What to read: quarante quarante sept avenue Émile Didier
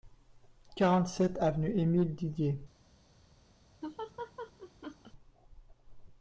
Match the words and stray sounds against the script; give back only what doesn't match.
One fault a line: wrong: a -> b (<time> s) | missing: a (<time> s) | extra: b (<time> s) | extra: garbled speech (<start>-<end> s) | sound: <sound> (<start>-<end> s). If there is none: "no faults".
missing: quarante (1.1 s)
sound: laugh (3.8-5.1 s)